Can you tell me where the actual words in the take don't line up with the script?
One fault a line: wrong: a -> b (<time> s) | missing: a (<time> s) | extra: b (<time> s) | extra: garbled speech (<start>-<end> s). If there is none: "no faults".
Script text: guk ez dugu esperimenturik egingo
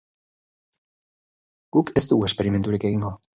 no faults